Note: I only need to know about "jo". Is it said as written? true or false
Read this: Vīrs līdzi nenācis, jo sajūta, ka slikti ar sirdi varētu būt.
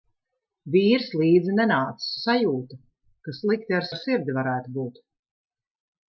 false